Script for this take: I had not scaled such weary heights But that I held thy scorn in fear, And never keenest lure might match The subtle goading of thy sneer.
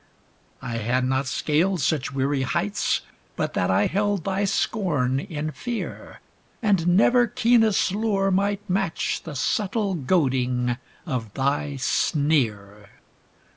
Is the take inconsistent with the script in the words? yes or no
no